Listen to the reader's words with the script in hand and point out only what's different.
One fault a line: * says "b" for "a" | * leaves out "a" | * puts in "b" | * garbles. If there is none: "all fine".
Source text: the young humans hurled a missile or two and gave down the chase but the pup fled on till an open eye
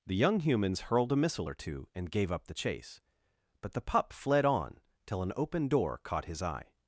* says "up" for "down"
* puts in "door caught his"